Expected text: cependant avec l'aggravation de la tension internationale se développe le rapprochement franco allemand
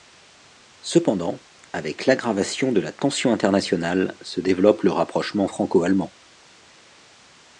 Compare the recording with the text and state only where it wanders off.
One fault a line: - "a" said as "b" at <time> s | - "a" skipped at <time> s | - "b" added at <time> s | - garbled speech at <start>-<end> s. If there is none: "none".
none